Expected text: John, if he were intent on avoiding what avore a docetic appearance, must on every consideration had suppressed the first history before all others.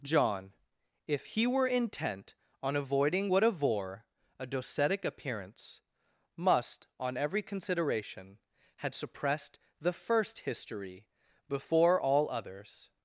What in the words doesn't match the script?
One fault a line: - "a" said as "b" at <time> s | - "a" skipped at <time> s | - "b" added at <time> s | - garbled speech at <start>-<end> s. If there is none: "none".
none